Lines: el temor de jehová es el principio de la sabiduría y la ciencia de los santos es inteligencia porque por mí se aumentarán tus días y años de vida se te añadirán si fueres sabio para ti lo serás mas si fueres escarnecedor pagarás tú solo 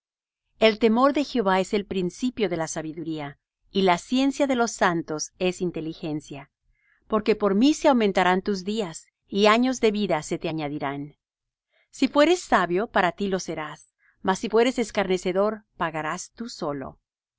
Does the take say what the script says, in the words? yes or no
yes